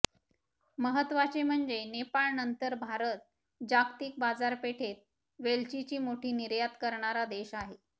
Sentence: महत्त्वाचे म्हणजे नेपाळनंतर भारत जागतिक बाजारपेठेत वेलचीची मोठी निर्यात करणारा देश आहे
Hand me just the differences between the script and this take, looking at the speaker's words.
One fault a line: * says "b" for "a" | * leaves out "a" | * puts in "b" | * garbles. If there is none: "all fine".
all fine